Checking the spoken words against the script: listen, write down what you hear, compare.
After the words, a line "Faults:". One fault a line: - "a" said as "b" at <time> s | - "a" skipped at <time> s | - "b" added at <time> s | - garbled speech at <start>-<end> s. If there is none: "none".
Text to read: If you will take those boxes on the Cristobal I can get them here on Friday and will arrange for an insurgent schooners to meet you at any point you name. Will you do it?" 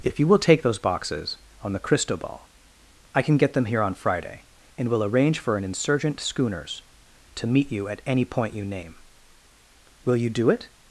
If you will take those boxes on the Cristobal I can get them here on Friday and will arrange for an insurgent schooners to meet you at any point you name. Will you do it?"
Faults:
none